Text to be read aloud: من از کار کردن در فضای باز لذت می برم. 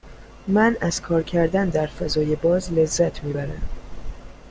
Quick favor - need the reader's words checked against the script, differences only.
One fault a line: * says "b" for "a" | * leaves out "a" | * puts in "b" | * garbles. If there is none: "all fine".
all fine